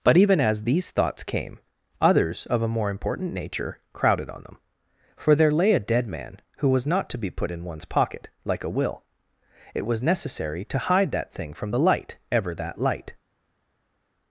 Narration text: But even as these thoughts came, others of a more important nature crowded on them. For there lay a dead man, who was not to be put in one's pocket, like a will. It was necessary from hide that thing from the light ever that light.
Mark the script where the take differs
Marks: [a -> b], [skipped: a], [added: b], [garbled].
But even as these thoughts came, others of a more important nature crowded on them. For there lay a dead man, who was not to be put in one's pocket, like a will. It was necessary [from -> to] hide that thing from the light ever that light.